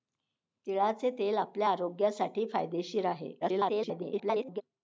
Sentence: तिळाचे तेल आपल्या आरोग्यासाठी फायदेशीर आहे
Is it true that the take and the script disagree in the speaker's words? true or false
true